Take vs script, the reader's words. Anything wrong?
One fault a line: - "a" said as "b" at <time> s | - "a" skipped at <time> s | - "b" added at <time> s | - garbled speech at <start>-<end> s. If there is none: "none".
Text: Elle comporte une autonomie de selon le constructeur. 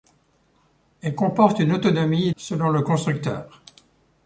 - "de" skipped at 2.3 s